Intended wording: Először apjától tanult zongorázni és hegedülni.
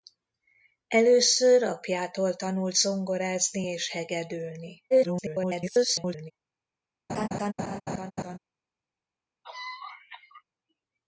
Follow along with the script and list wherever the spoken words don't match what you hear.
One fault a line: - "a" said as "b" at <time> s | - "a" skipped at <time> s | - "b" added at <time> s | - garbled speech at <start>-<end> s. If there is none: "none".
- garbled speech at 4.9-6.3 s